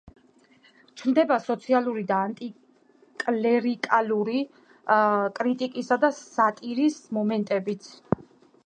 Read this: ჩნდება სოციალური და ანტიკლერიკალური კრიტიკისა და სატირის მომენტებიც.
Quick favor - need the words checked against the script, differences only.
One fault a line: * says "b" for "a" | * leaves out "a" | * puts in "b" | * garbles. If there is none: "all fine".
all fine